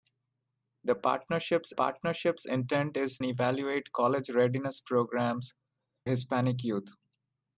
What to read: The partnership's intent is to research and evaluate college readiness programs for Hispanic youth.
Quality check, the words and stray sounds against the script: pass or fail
fail